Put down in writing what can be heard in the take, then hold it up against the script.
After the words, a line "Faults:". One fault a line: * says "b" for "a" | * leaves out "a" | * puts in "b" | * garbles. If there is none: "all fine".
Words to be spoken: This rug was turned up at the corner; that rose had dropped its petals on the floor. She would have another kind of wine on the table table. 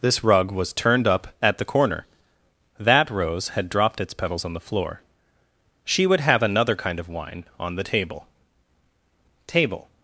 This rug was turned up at the corner; that rose had dropped its petals on the floor. She would have another kind of wine on the table table.
Faults:
all fine